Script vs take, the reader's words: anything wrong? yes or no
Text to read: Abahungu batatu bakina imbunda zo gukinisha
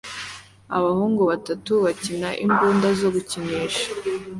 no